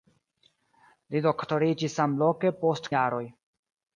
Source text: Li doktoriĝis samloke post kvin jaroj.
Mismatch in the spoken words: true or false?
true